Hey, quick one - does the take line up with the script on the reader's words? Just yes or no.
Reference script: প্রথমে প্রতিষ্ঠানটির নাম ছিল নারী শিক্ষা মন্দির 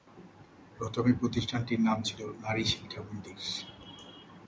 yes